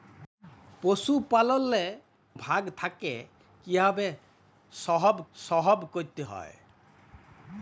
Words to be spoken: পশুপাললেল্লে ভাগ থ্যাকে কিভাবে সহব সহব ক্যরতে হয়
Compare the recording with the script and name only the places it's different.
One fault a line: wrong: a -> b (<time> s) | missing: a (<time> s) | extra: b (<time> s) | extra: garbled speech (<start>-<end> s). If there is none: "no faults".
no faults